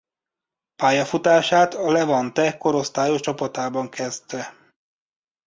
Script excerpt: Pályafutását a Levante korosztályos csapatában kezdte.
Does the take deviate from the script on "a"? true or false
false